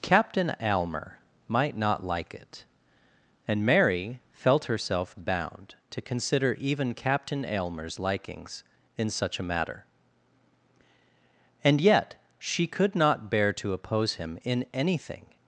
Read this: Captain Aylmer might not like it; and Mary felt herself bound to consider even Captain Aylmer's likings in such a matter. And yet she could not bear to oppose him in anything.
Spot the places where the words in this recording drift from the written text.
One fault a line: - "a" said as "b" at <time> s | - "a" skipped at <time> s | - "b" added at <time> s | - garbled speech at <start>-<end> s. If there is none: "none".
none